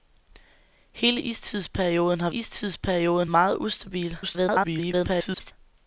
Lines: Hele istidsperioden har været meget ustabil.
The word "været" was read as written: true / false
false